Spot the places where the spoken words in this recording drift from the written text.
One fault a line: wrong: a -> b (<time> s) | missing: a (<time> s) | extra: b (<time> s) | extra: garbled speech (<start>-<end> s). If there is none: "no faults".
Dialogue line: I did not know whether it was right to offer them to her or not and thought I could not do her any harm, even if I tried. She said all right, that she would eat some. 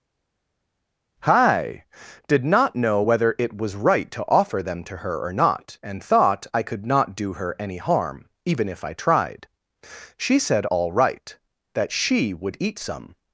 wrong: I -> hi (1.2 s)